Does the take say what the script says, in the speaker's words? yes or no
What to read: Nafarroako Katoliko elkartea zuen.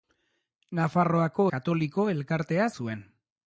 yes